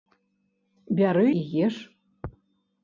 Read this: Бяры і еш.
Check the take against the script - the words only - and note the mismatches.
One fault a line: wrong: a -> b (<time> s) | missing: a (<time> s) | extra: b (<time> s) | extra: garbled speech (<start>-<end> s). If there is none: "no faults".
no faults